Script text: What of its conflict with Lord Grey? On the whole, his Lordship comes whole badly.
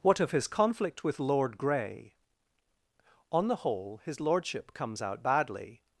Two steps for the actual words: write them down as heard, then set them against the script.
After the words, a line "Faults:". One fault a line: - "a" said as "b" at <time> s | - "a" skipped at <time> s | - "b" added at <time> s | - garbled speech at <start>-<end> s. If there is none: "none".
What of his conflict with Lord Grey? On the whole, his Lordship comes out badly.
Faults:
- "its" said as "his" at 0.3 s
- "whole" said as "out" at 5.0 s